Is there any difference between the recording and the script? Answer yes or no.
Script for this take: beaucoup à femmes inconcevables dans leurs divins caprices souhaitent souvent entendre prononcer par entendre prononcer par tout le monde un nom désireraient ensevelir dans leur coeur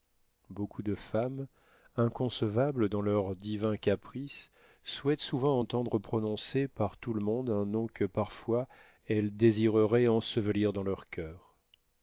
yes